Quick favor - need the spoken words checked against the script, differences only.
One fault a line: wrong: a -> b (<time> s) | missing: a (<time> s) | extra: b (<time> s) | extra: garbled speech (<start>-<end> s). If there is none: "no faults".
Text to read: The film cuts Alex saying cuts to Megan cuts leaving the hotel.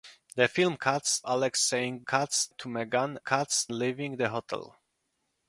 no faults